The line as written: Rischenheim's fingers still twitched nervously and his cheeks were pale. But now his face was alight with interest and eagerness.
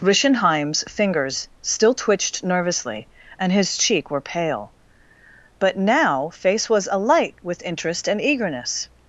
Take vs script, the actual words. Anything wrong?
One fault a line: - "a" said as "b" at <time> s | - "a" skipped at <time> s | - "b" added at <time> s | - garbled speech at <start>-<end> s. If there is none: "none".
- "cheeks" said as "cheek" at 3.8 s
- "his" skipped at 6.3 s